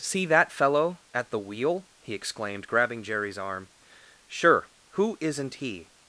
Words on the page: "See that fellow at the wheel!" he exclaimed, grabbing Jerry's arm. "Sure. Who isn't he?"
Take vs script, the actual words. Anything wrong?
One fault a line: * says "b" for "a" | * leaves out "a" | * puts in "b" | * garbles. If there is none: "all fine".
all fine